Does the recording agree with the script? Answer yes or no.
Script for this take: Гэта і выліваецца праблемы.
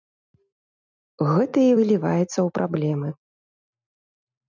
no